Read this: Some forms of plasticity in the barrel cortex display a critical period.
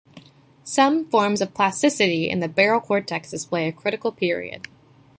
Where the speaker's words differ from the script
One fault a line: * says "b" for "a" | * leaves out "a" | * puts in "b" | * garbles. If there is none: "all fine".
all fine